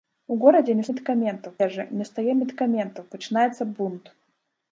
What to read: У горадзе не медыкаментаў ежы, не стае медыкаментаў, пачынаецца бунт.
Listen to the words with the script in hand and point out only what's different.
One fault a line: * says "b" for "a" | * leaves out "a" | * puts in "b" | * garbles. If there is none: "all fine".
all fine